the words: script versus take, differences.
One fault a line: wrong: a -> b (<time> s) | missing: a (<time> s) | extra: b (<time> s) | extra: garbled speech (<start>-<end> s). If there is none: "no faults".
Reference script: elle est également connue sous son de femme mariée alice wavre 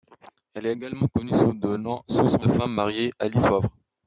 no faults